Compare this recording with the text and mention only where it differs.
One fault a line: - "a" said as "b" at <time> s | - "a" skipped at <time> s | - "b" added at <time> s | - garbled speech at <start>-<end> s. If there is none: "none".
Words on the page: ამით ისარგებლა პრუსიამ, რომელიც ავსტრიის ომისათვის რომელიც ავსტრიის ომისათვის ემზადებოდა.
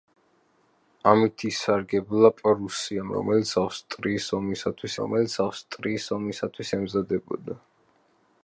none